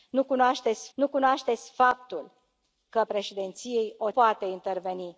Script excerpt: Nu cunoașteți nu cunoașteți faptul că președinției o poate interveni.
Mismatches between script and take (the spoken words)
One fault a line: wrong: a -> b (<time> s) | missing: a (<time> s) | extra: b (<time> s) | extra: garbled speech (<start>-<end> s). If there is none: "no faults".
no faults